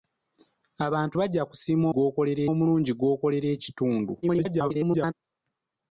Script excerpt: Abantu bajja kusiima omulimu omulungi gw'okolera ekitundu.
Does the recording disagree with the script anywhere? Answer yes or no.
yes